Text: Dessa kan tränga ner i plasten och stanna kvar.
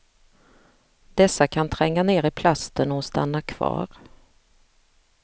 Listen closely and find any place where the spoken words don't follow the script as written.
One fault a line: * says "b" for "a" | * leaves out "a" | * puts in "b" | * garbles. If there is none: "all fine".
all fine